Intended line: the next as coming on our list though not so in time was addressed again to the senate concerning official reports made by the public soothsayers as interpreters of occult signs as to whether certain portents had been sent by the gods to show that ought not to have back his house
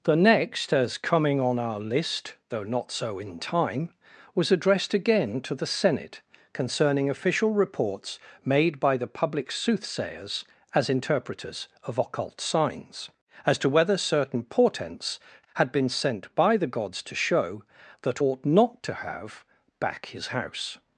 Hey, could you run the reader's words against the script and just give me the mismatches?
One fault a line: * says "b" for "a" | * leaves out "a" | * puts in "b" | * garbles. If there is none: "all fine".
all fine